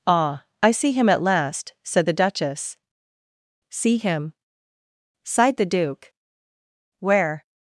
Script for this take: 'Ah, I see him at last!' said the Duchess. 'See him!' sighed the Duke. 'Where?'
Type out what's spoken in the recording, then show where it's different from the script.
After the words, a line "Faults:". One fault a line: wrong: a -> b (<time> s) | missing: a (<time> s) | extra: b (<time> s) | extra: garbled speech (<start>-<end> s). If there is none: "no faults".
'Ah, I see him at last!' said the Duchess. 'See him!' sighed the Duke. 'Where?'
Faults:
no faults